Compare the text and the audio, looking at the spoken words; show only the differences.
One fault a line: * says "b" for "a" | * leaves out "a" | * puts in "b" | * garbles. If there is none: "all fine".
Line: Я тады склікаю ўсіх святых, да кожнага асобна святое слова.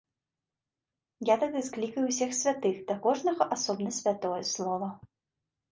all fine